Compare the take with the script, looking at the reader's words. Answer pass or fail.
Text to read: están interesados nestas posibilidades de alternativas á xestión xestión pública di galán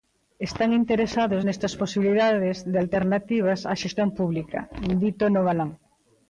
fail